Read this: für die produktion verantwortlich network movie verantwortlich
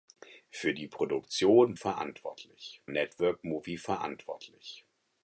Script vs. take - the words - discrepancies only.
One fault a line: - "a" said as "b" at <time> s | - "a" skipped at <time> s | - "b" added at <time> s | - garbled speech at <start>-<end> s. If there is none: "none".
none